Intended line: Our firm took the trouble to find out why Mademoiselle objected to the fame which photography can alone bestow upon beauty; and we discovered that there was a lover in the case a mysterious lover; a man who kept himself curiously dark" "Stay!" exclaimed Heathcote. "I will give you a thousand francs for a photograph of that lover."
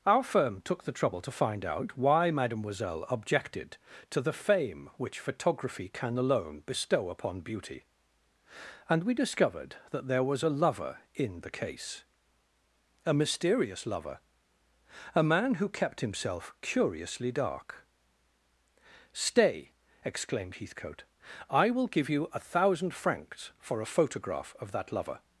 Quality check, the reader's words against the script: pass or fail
pass